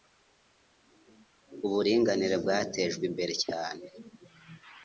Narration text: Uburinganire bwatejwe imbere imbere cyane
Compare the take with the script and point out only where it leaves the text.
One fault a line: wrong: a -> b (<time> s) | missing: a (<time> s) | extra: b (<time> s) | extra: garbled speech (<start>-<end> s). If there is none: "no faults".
missing: imbere (3.3 s)